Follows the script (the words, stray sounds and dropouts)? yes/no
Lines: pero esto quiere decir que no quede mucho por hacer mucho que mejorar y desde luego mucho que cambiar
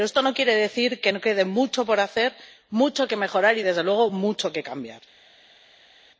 no